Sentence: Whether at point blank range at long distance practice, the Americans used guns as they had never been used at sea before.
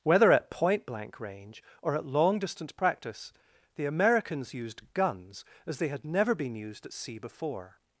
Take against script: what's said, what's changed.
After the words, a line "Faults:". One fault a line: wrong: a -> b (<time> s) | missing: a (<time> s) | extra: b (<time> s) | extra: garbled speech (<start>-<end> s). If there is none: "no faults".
Whether at point blank range or at long distance practice, the Americans used guns as they had never been used at sea before.
Faults:
extra: or (1.8 s)